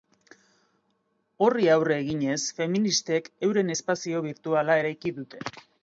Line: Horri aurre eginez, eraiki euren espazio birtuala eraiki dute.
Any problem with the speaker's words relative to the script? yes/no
yes